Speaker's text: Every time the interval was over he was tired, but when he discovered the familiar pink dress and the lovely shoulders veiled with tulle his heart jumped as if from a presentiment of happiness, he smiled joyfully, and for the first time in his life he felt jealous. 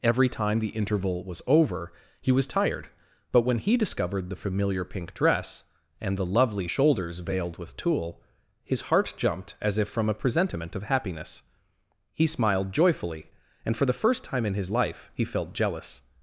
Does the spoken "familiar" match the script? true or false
true